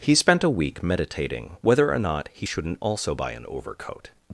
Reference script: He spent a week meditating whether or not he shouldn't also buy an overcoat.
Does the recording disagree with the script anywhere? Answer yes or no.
no